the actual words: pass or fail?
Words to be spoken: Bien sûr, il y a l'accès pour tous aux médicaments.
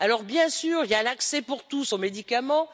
pass